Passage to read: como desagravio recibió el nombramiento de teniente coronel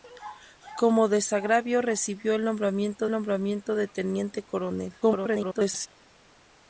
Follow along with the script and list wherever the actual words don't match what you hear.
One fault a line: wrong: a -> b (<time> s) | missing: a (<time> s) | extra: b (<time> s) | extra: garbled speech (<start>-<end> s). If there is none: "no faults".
extra: nombramiento (3.1 s)
extra: garbled speech (5.0-5.9 s)